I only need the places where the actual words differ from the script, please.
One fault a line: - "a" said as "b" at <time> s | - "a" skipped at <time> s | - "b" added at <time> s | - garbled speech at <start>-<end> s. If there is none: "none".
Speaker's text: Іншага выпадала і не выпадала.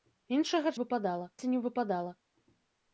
none